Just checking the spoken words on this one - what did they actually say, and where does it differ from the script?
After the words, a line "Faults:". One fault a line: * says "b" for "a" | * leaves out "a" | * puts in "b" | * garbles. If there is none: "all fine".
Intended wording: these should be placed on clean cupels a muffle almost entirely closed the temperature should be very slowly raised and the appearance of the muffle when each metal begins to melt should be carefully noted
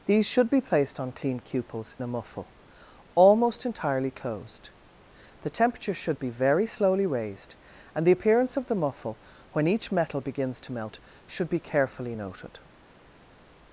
these should be placed on clean cupels a muffle almost entirely closed the temperature should be very slowly raised and the appearance of the muffle when each metal begins to melt should be carefully noted
Faults:
all fine